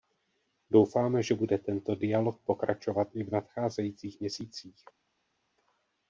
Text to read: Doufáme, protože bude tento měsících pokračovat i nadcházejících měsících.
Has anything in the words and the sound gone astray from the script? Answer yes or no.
yes